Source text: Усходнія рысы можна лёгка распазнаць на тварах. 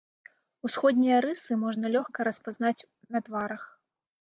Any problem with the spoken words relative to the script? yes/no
no